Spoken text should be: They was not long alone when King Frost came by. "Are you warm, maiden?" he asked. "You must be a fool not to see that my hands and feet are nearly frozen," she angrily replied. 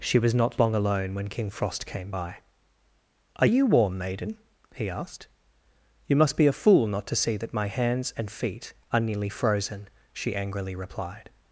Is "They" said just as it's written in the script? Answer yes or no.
no